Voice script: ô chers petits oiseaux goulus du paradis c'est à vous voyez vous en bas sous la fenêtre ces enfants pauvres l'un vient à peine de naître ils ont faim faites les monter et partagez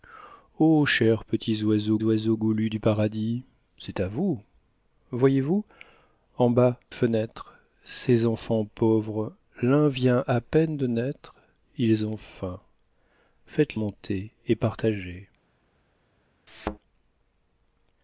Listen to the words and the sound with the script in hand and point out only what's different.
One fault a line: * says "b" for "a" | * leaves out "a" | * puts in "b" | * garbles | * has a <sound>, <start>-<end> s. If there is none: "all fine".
* puts in "oiseaux"
* leaves out "sous la"
* leaves out "les"
* has a thud, 16.5-16.8 s